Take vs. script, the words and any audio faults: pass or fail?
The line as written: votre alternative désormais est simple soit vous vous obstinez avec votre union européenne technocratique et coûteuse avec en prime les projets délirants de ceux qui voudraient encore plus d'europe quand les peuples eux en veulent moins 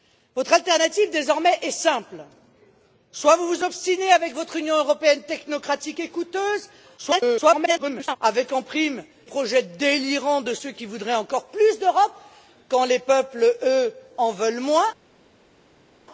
fail